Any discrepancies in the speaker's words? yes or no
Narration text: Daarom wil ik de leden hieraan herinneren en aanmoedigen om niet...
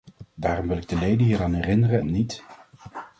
yes